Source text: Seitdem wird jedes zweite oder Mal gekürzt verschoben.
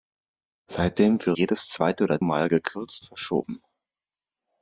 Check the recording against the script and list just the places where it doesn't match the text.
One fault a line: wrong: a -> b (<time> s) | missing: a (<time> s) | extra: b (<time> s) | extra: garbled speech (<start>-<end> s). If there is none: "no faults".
no faults